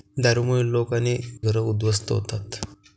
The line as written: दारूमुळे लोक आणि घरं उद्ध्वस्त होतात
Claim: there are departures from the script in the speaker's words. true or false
false